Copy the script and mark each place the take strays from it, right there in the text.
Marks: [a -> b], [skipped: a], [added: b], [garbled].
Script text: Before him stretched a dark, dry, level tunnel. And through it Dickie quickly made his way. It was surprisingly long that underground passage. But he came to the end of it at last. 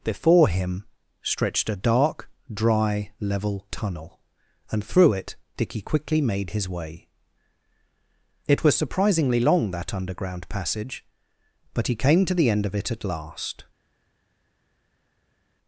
Before him stretched a dark, dry, level tunnel. And through it Dickie quickly made his way. It was surprisingly long that underground passage. But he came to the end of it at last.